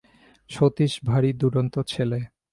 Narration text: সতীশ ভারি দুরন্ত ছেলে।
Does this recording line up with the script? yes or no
yes